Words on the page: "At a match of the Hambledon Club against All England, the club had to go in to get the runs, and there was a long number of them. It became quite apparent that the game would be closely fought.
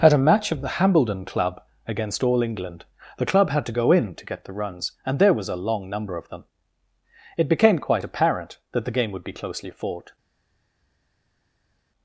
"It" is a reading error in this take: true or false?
false